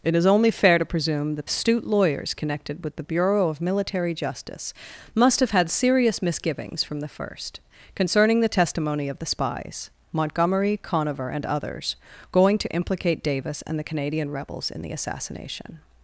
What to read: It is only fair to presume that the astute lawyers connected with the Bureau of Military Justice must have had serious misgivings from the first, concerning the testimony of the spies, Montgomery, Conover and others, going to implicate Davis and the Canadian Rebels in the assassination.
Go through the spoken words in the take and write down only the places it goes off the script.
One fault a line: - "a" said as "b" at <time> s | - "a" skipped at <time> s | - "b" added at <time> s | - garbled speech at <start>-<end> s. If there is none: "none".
- "the" skipped at 1.4 s